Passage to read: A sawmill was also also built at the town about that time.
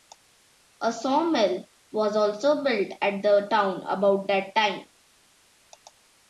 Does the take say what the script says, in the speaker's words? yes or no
no